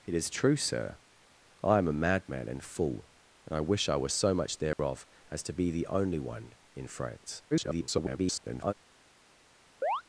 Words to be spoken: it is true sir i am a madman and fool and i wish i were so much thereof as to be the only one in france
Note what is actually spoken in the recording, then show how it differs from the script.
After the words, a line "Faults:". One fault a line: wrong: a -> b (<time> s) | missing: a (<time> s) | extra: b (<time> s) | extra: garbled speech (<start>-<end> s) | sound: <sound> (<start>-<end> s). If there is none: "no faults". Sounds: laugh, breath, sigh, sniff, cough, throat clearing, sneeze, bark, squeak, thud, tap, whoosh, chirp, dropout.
it is true sir i am a madman and fool and i wish i were so much thereof as to be the only one in france [garbled]
Faults:
sound: dropout (4.7-4.8 s)
extra: garbled speech (7.5-8.7 s)
sound: chirp (9.8-10.0 s)